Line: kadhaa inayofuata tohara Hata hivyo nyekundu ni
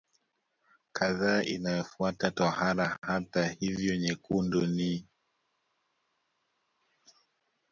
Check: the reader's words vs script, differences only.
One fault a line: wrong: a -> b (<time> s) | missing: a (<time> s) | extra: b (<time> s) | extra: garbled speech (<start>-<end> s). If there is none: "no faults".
no faults